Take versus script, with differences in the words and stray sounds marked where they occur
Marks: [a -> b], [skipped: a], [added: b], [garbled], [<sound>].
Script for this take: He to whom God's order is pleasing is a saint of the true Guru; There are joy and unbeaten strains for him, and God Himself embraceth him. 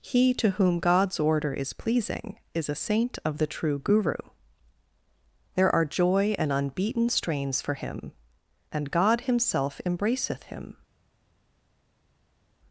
He to whom God's order is pleasing is a saint of the true Guru; There are joy and unbeaten strains for him, and God Himself embraceth him.